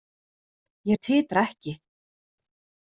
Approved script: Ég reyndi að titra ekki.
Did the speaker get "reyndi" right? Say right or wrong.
wrong